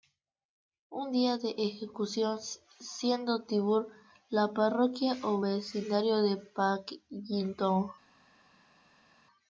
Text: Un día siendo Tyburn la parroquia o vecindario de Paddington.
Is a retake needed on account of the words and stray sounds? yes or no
yes